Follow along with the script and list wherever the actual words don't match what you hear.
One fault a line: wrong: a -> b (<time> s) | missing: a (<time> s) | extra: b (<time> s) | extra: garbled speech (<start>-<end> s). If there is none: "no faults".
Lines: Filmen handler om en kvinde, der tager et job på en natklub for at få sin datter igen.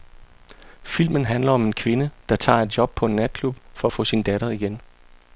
no faults